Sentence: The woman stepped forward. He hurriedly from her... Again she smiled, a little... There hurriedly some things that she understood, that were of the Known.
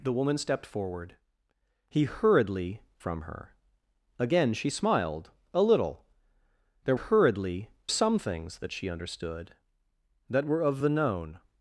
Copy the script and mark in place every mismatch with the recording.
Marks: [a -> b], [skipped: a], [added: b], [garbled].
The woman stepped forward. He hurriedly from her... Again she smiled, a little... There hurriedly some things that she understood, that were of the Known.